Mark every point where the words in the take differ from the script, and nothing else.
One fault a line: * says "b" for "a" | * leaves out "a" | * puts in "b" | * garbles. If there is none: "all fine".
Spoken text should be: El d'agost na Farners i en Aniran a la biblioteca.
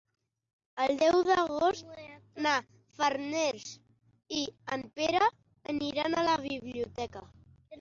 * puts in "deu"
* puts in "Pere"